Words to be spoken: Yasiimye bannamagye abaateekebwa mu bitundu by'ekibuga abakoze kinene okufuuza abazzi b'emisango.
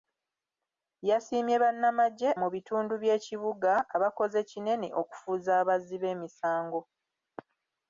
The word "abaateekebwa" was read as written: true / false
false